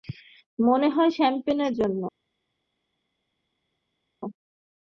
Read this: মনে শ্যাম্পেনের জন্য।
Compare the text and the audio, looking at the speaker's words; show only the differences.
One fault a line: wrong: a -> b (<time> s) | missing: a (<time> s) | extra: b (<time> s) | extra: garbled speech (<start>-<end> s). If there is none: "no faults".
extra: হয় (0.9 s)